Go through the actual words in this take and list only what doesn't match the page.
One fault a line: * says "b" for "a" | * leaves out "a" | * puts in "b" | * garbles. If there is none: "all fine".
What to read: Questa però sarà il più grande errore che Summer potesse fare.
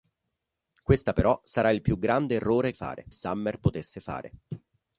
* says "fare" for "che"